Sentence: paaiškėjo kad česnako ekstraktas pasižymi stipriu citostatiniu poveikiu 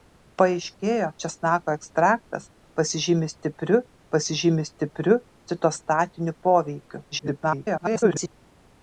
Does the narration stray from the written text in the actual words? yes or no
yes